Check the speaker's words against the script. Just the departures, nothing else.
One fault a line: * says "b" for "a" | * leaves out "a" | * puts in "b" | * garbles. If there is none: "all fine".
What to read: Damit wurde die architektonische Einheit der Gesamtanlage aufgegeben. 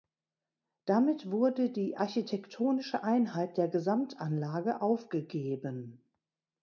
all fine